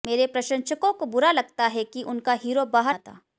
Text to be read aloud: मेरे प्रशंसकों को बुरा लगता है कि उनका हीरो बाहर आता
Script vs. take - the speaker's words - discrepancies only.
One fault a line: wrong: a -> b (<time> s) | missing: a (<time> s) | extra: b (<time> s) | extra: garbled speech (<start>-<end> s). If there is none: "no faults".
no faults